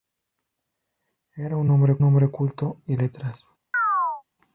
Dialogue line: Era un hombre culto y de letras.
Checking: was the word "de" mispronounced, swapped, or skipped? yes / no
yes